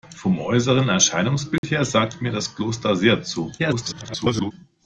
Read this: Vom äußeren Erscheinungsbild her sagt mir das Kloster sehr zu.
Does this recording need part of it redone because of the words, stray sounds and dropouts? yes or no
yes